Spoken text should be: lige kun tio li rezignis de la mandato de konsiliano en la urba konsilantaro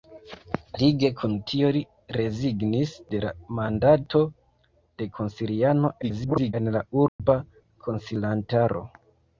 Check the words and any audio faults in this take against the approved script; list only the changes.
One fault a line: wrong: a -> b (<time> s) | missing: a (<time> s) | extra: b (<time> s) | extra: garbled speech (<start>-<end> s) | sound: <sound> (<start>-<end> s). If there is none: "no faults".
extra: garbled speech (6.0-6.5 s)
sound: dropout (7.1-7.2 s)